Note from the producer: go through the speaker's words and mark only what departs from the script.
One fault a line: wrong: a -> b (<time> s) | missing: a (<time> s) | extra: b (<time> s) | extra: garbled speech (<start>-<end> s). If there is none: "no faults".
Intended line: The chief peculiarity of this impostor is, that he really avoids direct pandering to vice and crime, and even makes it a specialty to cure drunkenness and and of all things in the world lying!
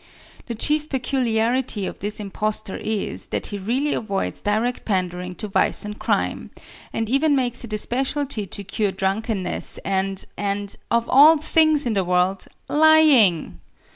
no faults